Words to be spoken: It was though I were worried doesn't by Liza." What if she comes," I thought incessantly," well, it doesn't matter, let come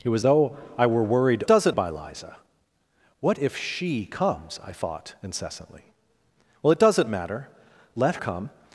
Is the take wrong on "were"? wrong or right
right